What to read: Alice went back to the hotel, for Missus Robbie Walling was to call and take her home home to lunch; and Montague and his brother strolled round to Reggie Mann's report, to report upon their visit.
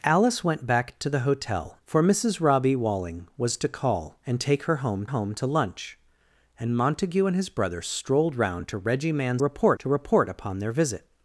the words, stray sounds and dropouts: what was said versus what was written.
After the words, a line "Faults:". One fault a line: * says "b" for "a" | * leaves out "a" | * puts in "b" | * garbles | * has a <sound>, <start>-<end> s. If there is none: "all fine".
Alice went back to the hotel, for Missus Robbie Walling was to call and take her home home to lunch; and Montague and his brother strolled round to Reggie Mann's report, to report upon their visit.
Faults:
all fine